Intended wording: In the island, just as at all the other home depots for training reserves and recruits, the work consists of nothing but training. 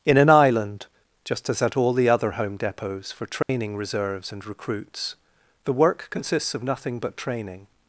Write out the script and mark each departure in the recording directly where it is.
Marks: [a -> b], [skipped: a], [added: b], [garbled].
In [the -> an] island, just as at all the other home depots for training reserves and recruits, the work consists of nothing but training.